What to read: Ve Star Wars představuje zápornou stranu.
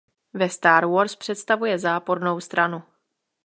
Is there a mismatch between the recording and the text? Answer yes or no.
no